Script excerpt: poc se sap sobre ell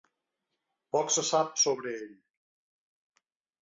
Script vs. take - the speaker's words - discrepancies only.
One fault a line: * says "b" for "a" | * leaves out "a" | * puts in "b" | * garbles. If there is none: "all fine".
all fine